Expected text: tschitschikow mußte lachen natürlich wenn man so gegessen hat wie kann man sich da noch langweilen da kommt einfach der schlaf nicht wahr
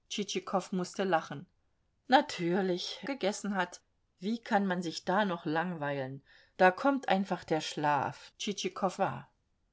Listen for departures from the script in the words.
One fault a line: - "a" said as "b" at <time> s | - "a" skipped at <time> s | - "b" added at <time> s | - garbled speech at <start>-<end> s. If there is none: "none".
- "wenn man so" skipped at 3.0 s
- "nicht" said as "tschitschikow" at 8.4 s